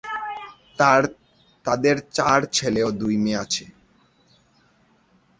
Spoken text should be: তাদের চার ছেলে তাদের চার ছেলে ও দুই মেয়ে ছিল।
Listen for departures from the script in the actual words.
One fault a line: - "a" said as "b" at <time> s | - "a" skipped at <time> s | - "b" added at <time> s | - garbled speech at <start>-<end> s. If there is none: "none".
- "তাদের চার ছেলে" skipped at 2.8 s
- "ছিল" said as "আছে" at 3.4 s